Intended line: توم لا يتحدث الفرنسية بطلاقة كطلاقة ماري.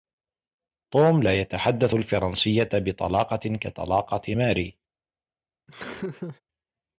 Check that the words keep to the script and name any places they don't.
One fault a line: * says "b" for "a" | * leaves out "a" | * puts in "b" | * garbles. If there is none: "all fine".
all fine